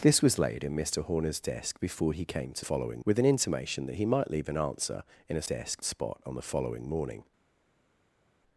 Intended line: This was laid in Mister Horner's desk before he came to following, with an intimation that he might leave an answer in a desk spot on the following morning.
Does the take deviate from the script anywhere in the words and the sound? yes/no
no